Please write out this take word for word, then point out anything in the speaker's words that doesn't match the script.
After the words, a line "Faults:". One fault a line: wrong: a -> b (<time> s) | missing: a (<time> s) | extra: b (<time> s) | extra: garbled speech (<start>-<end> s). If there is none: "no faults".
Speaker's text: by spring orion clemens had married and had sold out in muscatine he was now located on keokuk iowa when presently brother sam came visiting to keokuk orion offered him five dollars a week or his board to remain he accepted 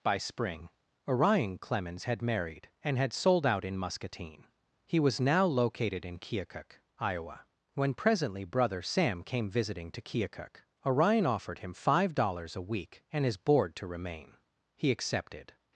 by spring orion clemens had married and had sold out in muscatine he was now located in keokuk iowa when presently brother sam came visiting to keokuk orion offered him five dollars a week and his board to remain he accepted
Faults:
wrong: on -> in (6.0 s)
wrong: or -> and (13.1 s)